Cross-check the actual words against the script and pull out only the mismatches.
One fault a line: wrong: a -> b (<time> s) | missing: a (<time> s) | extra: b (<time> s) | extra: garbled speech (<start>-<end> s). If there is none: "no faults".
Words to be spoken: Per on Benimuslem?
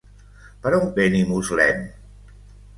no faults